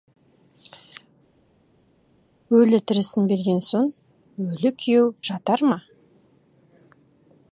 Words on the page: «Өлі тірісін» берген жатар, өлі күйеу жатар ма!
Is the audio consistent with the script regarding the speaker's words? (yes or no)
no